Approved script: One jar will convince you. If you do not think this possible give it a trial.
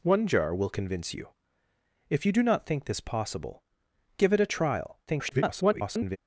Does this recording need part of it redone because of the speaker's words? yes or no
yes